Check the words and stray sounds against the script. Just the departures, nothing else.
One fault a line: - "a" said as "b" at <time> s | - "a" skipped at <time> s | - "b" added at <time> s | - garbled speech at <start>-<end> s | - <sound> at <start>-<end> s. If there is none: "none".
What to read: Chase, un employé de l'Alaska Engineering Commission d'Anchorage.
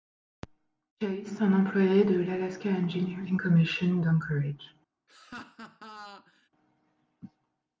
- laugh at 5.1-6.5 s